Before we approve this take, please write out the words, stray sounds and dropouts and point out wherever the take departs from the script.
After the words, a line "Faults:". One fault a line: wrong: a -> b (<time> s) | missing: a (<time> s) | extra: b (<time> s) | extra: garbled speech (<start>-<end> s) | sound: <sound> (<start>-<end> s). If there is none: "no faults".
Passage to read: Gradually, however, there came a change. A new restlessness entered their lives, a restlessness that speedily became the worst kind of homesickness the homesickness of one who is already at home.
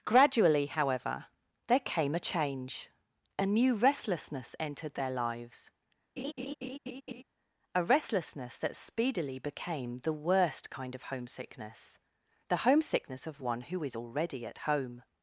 Gradually, however, there came a change. A new restlessness entered their lives, a restlessness that speedily became the worst kind of homesickness the homesickness of one who is already at home.
Faults:
sound: laugh (6.2-7.2 s)